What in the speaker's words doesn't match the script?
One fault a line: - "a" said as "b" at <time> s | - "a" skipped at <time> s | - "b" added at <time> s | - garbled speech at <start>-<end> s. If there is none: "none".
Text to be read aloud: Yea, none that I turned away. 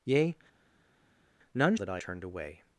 none